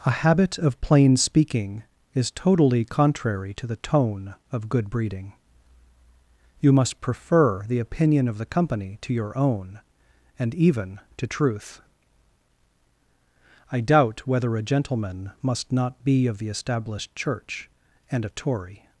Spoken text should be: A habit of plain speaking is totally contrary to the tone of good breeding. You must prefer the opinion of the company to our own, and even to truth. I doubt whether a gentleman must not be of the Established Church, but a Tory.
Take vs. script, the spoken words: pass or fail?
fail